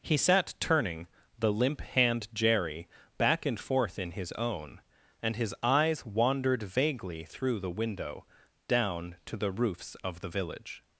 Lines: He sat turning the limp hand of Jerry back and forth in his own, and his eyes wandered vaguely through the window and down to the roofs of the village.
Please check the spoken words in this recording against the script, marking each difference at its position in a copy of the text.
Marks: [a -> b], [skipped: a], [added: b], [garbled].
He sat turning the limp hand [skipped: of] Jerry back and forth in his own, and his eyes wandered vaguely through the window [skipped: and] down to the roofs of the village.